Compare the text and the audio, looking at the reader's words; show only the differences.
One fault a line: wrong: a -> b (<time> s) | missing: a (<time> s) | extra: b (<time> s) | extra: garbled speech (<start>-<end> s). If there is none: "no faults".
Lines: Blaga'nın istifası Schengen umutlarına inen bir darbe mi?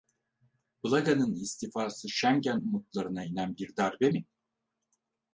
no faults